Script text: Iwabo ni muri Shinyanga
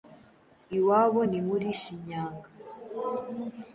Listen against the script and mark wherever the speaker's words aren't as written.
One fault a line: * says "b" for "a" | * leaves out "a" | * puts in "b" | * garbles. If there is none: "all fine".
all fine